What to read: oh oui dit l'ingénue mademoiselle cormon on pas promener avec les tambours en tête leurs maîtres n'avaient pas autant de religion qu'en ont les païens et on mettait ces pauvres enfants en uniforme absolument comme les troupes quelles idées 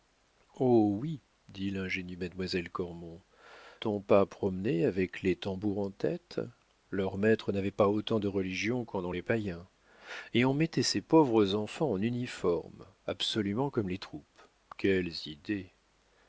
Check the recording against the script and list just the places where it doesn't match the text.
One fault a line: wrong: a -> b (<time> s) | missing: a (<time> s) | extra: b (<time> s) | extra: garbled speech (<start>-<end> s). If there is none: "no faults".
no faults